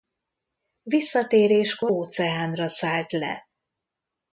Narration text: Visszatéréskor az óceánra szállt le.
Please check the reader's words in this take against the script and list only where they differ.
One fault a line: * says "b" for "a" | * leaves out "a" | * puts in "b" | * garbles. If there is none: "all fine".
* leaves out "az"